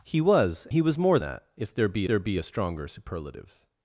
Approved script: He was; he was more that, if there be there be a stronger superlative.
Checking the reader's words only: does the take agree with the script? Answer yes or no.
yes